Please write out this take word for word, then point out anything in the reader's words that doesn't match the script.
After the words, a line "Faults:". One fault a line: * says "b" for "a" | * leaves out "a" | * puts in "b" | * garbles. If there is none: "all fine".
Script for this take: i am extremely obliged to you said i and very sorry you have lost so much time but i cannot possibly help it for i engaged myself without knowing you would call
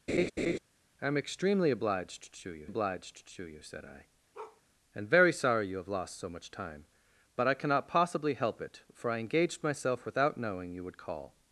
i am extremely obliged to you obliged to you said i and very sorry you have lost so much time but i cannot possibly help it for i engaged myself without knowing you would call
Faults:
* puts in "obliged to you"